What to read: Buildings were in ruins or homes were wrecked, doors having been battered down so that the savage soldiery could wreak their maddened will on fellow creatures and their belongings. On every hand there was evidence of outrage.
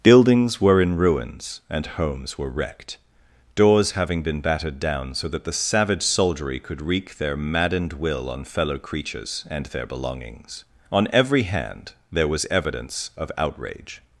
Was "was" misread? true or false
false